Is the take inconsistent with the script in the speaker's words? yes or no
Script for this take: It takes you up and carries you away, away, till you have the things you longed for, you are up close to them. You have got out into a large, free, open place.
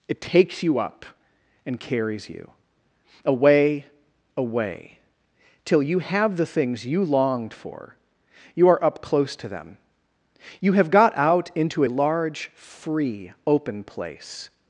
no